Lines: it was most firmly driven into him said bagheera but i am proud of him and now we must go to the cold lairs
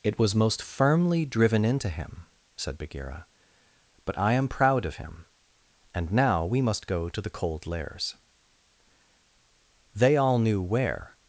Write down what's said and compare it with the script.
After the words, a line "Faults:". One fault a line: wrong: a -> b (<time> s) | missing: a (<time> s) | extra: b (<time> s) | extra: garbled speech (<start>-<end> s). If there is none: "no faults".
it was most firmly driven into him said bagheera but i am proud of him and now we must go to the cold lairs they all knew where
Faults:
extra: they all knew where (9.9 s)